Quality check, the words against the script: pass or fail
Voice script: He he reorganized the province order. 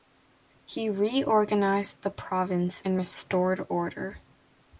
fail